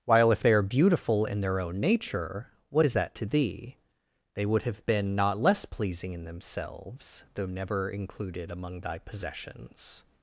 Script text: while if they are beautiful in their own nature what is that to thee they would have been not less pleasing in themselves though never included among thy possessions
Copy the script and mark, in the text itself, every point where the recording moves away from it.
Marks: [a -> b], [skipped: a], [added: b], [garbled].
while if they are beautiful in their own nature what is that to thee they would have been not less pleasing in themselves though never included among thy possessions